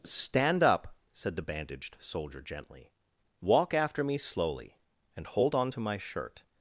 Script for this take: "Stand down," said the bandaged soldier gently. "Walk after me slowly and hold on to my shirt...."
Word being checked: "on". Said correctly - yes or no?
yes